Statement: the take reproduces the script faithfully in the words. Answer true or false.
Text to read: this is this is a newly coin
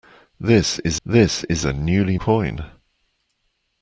true